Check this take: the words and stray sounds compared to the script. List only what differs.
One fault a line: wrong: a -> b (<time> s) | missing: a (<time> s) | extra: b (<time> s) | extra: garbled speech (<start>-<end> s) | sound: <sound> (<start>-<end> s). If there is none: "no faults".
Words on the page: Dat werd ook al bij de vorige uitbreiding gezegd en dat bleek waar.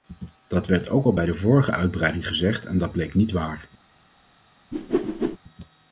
extra: niet (3.1 s)
sound: whoosh (4.7-5.4 s)